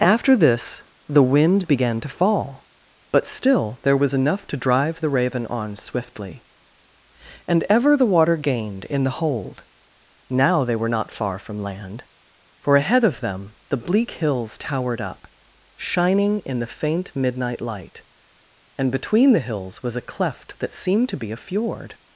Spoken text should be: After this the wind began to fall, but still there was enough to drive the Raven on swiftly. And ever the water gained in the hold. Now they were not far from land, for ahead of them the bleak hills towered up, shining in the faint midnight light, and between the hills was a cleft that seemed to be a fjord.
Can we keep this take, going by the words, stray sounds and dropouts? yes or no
yes